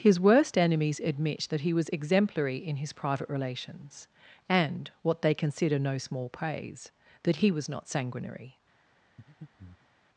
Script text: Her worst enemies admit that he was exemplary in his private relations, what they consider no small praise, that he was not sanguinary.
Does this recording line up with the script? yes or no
no